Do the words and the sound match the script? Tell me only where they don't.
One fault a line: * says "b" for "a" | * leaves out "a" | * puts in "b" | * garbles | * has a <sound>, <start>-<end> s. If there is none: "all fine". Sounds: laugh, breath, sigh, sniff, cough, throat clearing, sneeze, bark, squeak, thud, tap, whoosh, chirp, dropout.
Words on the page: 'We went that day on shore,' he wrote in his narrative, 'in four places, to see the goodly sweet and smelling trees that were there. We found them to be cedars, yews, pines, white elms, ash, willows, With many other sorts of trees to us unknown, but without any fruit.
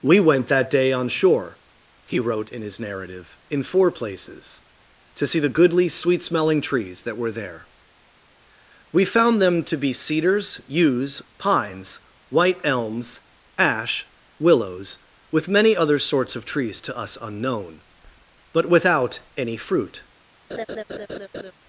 * leaves out "and"
* has a laugh, 20.5-21.5 s